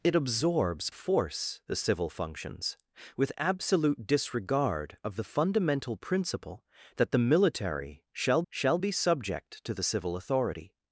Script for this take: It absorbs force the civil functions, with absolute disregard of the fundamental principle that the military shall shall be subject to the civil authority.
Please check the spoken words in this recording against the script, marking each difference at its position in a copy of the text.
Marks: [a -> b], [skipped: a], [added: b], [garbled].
It absorbs force the civil functions, with absolute disregard of the fundamental principle that the military shall shall be subject to the civil authority.